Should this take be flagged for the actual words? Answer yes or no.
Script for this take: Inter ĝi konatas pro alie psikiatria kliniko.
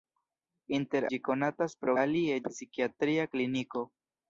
no